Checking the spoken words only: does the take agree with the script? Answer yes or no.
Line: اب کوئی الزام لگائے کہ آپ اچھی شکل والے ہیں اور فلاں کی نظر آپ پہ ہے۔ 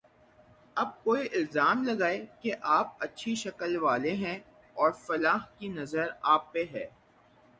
yes